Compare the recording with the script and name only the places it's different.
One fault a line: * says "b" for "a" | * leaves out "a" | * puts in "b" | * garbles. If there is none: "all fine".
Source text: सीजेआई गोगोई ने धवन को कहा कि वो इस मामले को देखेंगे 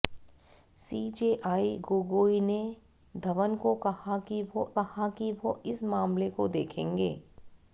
* puts in "कहा कि वो"